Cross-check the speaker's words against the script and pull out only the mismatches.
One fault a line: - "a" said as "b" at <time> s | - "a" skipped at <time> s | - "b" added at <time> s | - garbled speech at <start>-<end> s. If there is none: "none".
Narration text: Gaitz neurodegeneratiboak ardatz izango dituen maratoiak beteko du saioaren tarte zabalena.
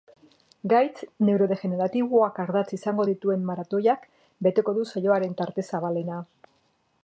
none